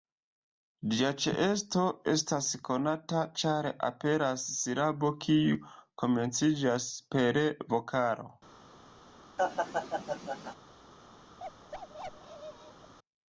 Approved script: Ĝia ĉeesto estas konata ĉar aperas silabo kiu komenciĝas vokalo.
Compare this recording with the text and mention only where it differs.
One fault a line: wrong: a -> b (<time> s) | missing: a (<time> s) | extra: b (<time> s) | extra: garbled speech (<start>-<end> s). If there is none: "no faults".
extra: per (7.2 s)